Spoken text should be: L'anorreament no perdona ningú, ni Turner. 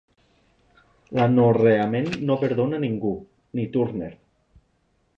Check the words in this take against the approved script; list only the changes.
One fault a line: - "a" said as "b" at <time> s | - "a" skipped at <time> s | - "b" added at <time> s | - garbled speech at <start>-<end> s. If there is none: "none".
none